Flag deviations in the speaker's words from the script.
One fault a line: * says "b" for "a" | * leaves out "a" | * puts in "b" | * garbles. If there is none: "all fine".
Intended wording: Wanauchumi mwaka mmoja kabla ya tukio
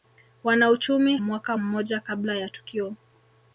all fine